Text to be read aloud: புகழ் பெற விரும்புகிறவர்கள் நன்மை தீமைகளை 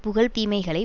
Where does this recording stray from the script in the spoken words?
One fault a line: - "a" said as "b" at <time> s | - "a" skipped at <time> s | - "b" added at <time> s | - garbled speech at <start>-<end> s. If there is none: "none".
- "பெற விரும்புகிறவர்கள் நன்மை" skipped at 0.3 s